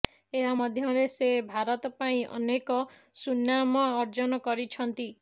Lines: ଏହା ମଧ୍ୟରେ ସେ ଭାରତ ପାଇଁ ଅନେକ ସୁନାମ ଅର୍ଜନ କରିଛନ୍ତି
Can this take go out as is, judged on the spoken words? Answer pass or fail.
pass